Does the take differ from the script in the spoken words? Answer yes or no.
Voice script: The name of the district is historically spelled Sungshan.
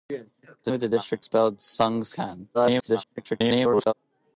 yes